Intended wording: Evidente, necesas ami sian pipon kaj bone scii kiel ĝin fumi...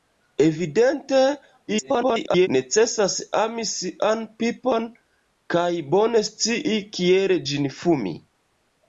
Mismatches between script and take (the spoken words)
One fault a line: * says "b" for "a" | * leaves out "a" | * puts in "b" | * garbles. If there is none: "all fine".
* garbles